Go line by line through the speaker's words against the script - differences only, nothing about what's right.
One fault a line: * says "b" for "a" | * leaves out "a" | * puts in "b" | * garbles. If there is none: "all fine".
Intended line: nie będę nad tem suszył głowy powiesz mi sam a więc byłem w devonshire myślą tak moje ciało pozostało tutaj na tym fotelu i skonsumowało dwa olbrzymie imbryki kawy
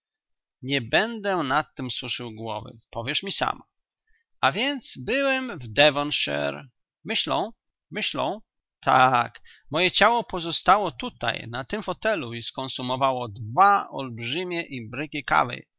* puts in "myślą"